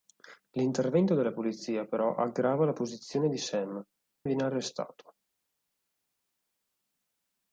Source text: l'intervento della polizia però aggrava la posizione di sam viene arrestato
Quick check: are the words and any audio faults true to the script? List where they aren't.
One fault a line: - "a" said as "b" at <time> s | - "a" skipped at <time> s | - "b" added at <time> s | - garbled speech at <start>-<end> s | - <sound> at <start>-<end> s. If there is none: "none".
none